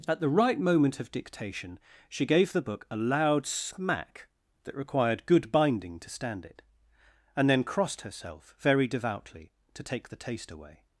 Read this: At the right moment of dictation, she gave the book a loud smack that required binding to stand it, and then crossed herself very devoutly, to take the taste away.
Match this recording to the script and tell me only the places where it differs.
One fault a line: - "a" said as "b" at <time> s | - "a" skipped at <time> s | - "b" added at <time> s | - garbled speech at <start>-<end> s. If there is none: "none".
- "good" added at 5.3 s